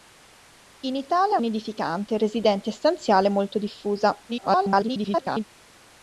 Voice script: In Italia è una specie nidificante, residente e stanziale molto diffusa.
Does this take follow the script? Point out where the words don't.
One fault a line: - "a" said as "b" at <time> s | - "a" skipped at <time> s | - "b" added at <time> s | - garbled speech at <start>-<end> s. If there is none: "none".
- "una specie" skipped at 1.4 s
- garbled speech at 4.3-5.4 s